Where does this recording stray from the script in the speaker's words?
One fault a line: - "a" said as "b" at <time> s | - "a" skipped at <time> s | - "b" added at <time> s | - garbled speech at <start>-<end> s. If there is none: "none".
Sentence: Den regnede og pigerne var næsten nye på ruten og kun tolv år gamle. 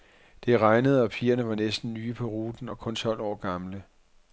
- "Den" said as "Det" at 0.5 s